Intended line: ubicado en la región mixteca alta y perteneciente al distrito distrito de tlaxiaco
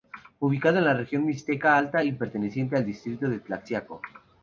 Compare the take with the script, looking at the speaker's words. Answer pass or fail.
fail